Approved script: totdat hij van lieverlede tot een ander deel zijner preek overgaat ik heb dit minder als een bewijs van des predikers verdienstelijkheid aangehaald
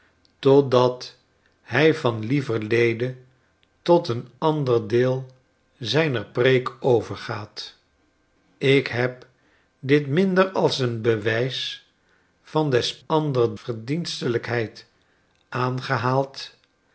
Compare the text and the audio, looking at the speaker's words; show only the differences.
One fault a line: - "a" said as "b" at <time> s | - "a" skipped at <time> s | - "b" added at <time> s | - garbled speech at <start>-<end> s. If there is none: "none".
- "predikers" said as "ander" at 13.1 s